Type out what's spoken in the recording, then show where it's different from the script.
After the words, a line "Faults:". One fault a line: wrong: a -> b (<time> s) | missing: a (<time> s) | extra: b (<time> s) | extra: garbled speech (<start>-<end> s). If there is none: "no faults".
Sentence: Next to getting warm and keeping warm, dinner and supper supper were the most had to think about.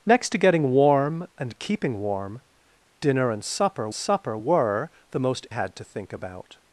Next to getting warm and keeping warm, dinner and supper supper were the most had to think about.
Faults:
no faults